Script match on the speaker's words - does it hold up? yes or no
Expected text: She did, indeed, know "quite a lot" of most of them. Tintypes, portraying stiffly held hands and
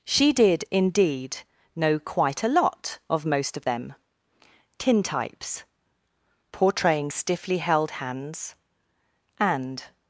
yes